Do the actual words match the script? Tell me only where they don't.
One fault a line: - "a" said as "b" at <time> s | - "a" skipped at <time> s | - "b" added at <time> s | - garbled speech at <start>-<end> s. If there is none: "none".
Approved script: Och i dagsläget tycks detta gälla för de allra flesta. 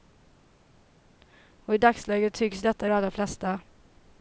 - "gälla för" skipped at 2.9 s